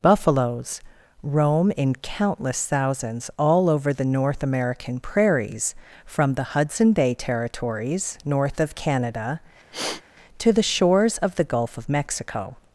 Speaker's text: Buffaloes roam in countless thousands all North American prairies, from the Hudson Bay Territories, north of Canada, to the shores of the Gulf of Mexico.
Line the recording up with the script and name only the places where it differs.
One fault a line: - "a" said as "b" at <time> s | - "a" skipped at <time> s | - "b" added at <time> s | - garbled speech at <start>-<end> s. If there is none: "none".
- "over the" added at 3.7 s